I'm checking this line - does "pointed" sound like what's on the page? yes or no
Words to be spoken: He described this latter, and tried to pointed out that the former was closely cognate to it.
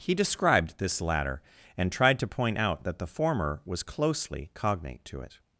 no